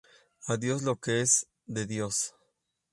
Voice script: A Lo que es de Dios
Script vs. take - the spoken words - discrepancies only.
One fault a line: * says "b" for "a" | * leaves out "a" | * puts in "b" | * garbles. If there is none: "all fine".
* puts in "Dios"